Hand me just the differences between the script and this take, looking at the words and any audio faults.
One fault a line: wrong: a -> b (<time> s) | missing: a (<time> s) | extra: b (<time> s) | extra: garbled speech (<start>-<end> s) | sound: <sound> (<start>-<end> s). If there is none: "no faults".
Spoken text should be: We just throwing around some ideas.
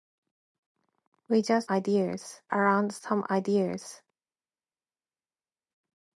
wrong: throwing -> ideas (1.7 s)